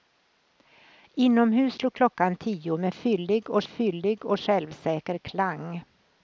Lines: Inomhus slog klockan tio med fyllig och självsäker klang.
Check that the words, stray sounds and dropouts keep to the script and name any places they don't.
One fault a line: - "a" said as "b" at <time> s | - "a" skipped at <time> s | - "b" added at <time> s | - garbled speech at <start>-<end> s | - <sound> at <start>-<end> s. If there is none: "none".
- "fyllig och" added at 3.7 s